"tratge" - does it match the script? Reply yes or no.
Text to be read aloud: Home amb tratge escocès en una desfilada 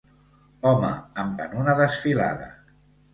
no